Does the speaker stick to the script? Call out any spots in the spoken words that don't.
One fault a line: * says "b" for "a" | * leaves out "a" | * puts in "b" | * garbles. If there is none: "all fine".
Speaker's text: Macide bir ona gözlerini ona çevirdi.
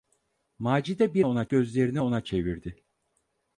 all fine